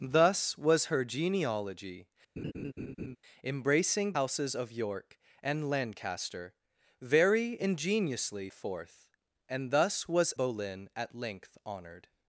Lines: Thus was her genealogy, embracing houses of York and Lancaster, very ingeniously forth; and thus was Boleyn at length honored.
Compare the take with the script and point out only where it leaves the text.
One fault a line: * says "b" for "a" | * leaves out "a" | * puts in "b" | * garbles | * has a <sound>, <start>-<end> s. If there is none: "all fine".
* has a laugh, 2.4-3.2 s